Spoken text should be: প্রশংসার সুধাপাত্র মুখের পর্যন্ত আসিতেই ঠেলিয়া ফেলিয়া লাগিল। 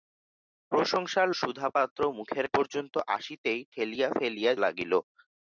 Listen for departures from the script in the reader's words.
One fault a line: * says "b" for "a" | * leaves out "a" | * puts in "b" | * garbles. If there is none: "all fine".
all fine